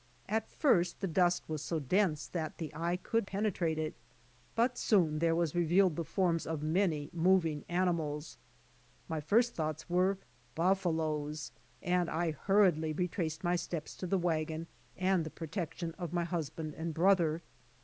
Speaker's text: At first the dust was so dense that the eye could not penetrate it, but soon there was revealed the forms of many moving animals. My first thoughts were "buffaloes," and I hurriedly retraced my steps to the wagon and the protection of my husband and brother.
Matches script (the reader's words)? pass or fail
fail